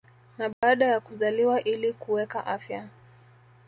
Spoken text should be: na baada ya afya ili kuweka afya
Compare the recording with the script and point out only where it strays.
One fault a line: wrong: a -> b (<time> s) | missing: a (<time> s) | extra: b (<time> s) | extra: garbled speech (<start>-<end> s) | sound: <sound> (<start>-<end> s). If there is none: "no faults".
sound: dropout (0.5-0.6 s)
wrong: afya -> kuzaliwa (1.0 s)